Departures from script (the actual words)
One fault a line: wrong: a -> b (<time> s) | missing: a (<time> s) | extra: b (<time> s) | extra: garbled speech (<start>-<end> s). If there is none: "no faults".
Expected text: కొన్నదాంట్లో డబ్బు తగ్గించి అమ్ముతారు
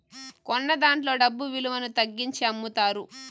extra: విలువను (1.5 s)